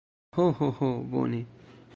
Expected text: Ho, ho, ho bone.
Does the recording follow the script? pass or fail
pass